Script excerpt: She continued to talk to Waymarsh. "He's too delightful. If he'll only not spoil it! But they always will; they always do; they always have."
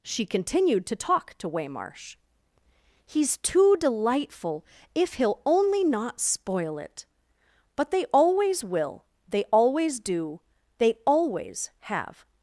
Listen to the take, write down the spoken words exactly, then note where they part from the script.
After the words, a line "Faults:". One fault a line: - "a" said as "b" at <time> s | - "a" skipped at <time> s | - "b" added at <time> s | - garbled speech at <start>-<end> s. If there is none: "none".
She continued to talk to Waymarsh. "He's too delightful. If he'll only not spoil it! But they always will; they always do; they always have."
Faults:
none